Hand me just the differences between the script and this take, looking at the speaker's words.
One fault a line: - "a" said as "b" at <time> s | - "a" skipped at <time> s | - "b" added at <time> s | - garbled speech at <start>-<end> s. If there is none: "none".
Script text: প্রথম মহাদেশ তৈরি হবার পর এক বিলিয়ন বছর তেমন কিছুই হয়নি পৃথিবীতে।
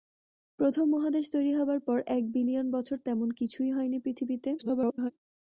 - garbled speech at 4.6-5.1 s